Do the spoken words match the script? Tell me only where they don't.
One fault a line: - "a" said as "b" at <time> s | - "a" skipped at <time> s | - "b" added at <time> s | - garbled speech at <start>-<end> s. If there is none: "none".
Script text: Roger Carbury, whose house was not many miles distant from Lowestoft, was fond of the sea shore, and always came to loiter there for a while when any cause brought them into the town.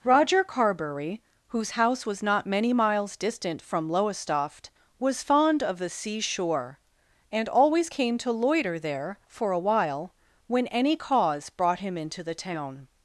- "them" said as "him" at 11.8 s